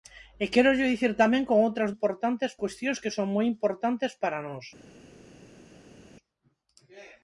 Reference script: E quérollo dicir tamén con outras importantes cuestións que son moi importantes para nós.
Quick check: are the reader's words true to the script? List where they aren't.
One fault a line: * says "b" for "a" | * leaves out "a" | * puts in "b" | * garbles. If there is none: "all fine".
all fine